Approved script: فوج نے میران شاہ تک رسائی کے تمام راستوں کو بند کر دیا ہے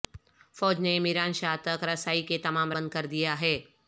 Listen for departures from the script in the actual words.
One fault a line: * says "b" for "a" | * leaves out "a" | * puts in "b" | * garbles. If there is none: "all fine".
* leaves out "راستوں کو"